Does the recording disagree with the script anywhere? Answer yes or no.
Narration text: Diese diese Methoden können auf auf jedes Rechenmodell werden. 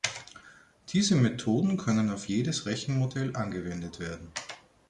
yes